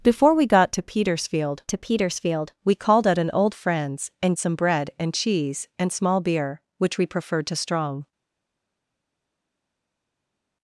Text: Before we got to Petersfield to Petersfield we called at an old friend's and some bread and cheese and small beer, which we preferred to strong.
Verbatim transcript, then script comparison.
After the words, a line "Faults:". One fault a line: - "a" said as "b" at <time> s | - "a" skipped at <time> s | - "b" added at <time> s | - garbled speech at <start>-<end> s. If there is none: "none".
Before we got to Petersfield to Petersfield we called at an old friend's and some bread and cheese and small beer, which we preferred to strong.
Faults:
none